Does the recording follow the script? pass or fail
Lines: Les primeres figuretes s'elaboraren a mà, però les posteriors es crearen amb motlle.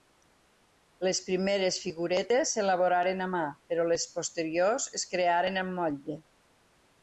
pass